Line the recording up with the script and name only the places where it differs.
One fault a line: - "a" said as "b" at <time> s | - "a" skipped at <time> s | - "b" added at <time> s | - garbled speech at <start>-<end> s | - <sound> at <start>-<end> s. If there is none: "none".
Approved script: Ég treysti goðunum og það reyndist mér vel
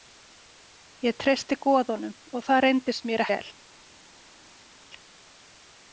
none